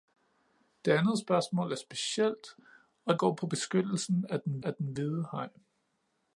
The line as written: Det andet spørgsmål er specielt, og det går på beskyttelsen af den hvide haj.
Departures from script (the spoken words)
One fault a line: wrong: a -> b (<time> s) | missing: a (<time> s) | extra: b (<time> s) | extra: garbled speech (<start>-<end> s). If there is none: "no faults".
missing: det (3.2 s)
extra: af den (4.6 s)